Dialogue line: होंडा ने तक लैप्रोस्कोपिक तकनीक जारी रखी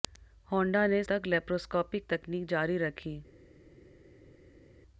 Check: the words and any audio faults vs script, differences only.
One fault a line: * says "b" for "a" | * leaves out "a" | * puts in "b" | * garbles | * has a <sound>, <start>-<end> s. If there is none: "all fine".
all fine